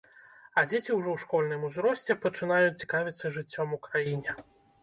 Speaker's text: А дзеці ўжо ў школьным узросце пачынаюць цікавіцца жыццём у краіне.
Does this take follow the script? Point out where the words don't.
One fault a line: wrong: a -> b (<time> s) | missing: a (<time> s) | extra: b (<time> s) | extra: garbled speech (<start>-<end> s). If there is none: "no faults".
no faults